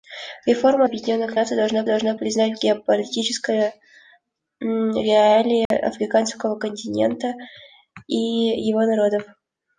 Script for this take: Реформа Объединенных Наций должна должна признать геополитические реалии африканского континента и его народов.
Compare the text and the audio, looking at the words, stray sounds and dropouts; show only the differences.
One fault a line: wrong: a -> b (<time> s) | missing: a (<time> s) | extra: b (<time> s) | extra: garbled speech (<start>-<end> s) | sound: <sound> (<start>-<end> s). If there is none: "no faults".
sound: dropout (5.7-5.7 s)